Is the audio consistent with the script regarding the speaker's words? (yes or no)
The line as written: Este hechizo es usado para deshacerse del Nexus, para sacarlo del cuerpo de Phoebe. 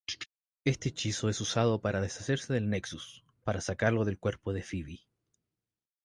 yes